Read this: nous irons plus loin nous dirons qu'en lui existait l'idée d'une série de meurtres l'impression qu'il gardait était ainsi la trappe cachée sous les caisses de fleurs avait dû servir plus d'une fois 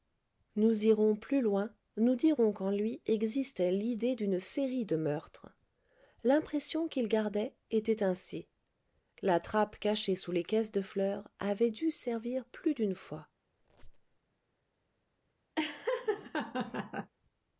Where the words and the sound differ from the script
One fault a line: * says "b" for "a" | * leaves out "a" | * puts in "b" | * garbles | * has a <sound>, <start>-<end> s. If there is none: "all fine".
* has a squeak, 13.6-14.2 s
* has a laugh, 15.6-17.1 s